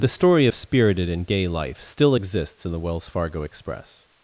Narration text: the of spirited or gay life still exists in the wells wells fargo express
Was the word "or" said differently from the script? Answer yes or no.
yes